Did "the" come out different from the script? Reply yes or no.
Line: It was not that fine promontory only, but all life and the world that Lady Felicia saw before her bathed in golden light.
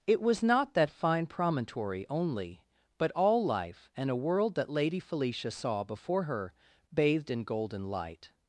yes